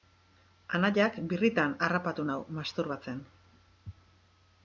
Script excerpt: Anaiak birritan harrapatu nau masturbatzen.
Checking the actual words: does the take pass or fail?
pass